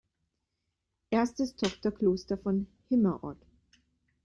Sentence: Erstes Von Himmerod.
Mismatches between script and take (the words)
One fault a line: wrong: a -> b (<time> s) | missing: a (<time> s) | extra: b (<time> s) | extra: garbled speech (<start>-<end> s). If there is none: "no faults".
extra: Tochterkloster (1.6 s)